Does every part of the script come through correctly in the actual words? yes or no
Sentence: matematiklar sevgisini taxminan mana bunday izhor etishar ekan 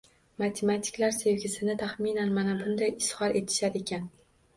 yes